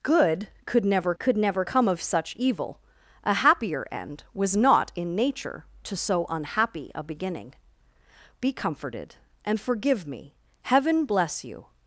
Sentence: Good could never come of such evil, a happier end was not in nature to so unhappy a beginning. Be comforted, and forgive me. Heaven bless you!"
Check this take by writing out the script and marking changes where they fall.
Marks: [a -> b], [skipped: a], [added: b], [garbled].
Good could never [added: could never] come of such evil, a happier end was not in nature to so unhappy a beginning. Be comforted, and forgive me. Heaven bless you!"